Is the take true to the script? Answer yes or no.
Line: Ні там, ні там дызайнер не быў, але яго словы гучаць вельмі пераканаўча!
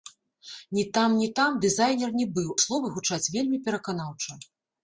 no